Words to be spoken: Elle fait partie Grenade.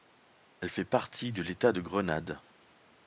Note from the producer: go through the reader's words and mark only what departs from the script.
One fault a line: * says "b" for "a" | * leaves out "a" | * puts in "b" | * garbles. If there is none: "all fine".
* puts in "de l'état de"